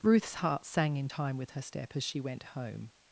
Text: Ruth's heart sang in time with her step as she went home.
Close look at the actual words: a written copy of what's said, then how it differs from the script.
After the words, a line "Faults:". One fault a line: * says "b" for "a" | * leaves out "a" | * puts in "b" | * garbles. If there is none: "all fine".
Ruth's heart sang in time with her step as she went home.
Faults:
all fine